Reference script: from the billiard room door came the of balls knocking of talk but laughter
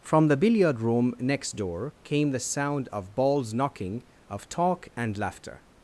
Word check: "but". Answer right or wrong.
wrong